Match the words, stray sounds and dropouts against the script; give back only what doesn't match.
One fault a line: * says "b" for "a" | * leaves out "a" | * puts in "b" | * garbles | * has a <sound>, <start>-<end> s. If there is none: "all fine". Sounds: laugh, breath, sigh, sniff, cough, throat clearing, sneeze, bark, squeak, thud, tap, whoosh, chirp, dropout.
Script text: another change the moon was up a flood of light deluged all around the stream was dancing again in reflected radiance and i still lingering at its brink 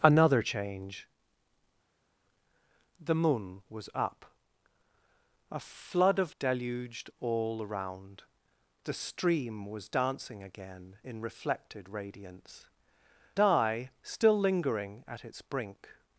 * leaves out "light"
* leaves out "and"